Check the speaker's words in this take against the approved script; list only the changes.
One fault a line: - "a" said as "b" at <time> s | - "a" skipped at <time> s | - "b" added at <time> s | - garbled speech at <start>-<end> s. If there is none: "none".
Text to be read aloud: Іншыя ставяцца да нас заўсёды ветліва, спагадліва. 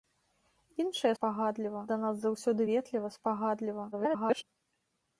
- "ставяцца" said as "спагадліва" at 1.2 s
- garbled speech at 3.9-4.4 s